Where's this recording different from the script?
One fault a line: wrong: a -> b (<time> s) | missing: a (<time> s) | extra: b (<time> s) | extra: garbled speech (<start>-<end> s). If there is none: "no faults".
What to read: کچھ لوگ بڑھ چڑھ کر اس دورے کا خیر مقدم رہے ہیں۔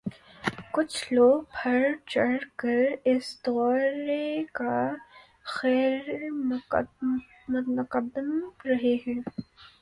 no faults